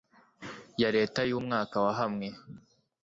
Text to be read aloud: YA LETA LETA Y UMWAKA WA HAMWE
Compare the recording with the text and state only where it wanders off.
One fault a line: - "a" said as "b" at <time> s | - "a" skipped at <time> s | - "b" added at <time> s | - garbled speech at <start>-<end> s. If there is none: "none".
- "LETA" skipped at 1.2 s